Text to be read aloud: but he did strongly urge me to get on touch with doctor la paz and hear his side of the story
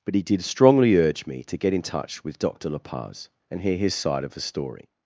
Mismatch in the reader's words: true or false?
true